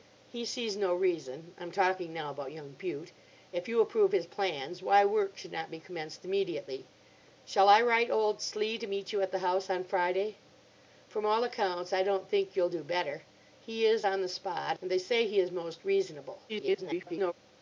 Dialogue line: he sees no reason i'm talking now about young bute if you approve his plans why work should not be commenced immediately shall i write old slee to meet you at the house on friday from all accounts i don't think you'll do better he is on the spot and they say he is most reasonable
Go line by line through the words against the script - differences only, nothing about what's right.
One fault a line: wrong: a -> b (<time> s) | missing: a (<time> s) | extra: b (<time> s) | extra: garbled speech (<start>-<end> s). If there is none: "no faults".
extra: garbled speech (16.5-17.3 s)